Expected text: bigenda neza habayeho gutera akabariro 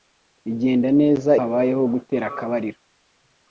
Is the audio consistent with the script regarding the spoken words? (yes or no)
yes